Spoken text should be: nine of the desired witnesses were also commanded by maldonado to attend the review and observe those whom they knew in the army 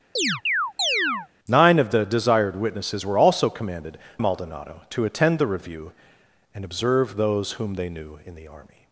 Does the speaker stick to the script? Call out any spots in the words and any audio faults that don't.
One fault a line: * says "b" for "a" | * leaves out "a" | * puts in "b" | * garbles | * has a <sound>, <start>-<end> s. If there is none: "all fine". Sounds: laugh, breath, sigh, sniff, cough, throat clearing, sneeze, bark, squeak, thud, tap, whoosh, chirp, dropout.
* has a chirp, 0.2-1.3 s
* leaves out "by"